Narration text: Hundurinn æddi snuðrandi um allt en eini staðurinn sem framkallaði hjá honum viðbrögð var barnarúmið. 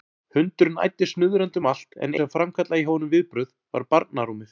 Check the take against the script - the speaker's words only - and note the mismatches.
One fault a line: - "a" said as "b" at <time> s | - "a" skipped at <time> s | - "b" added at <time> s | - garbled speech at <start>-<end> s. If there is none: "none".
- "eini staðurinn" skipped at 2.2 s